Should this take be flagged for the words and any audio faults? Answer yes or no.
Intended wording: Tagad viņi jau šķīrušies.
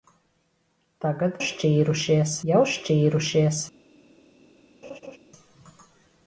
yes